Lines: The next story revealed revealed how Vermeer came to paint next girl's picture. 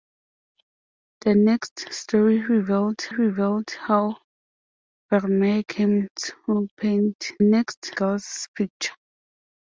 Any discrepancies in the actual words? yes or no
no